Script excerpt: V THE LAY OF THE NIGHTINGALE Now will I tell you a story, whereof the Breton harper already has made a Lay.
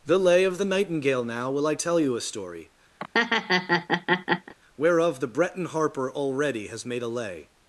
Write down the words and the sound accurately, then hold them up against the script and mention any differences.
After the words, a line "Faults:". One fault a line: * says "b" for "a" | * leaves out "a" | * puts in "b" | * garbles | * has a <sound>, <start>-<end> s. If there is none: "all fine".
THE LAY OF THE NIGHTINGALE Now will I tell you a story, whereof the Breton harper already has made a Lay.
Faults:
* leaves out "V"
* has a laugh, 3.0-4.5 s